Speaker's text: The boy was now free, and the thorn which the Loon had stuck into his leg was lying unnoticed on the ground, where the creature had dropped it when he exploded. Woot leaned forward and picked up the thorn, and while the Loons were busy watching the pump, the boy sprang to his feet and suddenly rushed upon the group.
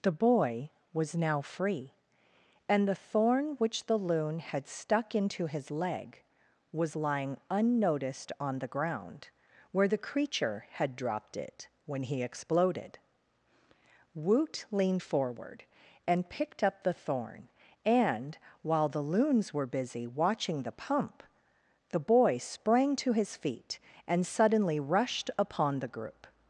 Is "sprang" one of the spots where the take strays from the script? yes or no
no